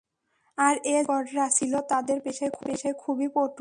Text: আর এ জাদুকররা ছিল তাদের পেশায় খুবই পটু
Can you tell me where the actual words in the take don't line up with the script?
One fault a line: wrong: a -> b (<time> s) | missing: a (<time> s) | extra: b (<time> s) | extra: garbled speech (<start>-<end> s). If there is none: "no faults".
no faults